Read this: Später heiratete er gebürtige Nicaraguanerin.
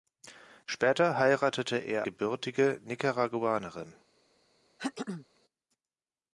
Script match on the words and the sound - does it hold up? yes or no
no